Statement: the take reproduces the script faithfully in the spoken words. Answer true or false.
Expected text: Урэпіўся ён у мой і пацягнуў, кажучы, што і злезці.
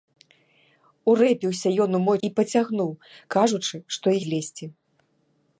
true